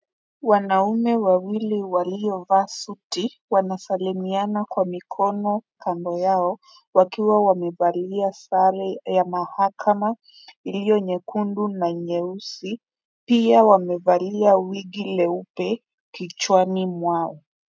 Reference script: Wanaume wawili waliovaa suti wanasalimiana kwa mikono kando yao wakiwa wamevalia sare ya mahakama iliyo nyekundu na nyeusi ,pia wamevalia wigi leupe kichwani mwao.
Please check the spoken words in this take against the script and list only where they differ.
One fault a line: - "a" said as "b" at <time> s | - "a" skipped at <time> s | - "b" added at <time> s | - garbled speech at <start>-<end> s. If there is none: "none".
none